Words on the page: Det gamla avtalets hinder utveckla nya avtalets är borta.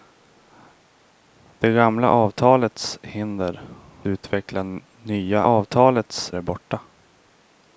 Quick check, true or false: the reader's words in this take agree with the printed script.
true